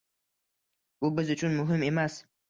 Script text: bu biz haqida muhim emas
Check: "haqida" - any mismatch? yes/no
yes